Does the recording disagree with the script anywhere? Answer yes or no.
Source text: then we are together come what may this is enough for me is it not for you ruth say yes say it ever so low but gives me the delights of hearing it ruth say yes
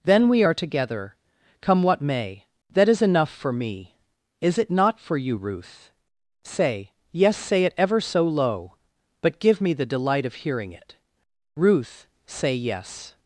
yes